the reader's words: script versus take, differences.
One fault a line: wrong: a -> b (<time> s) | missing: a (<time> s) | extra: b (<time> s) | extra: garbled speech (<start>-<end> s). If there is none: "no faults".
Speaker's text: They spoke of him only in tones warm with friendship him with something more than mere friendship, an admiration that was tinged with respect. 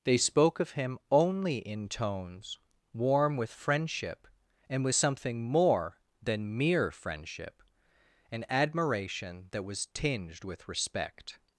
wrong: him -> and (4.7 s)